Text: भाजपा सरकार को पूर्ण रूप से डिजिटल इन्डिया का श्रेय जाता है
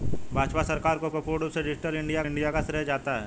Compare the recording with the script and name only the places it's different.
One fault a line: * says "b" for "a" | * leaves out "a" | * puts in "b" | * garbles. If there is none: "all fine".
* puts in "को"
* puts in "इन्डिया"